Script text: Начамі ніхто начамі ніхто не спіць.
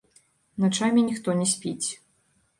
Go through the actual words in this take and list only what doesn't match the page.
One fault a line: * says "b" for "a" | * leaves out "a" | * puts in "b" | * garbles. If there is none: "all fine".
* leaves out "начамі ніхто"